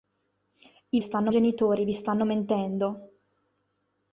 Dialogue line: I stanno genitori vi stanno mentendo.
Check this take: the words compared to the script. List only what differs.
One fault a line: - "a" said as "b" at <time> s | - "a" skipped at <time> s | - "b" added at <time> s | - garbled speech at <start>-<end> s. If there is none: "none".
none